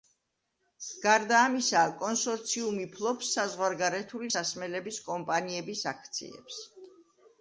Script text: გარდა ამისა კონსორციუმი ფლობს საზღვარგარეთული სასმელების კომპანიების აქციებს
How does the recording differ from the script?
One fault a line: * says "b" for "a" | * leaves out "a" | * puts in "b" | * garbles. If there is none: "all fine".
all fine